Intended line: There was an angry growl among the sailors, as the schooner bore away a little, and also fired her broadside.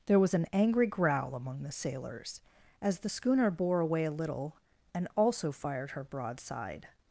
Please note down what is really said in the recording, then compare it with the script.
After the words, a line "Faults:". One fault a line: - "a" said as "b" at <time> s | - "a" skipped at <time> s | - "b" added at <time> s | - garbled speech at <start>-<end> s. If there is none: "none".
There was an angry growl among the sailors, as the schooner bore away a little, and also fired her broadside.
Faults:
none